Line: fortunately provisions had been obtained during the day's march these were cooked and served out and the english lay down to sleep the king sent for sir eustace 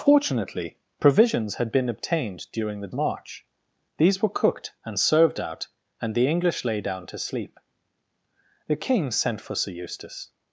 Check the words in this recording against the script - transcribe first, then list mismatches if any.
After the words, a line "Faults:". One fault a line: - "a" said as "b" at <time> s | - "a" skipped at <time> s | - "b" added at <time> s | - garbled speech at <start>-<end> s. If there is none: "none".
fortunately provisions had been obtained during the march these were cooked and served out and the english lay down to sleep the king sent for sir eustace
Faults:
- "day's" skipped at 3.0 s